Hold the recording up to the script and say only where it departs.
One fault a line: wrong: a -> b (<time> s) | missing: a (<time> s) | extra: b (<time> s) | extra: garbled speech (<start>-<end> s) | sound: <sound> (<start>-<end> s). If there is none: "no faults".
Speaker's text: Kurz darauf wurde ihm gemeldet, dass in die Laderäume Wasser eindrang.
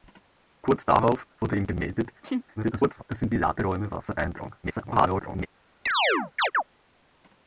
sound: laugh (2.2-2.4 s)
extra: garbled speech (2.6-3.0 s)
extra: garbled speech (4.6-5.5 s)
sound: chirp (5.9-6.6 s)